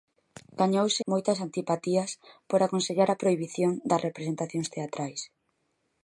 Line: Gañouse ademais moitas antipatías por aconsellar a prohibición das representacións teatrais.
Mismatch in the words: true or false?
true